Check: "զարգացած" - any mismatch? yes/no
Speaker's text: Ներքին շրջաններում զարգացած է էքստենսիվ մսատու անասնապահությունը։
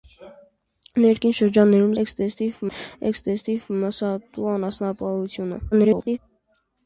yes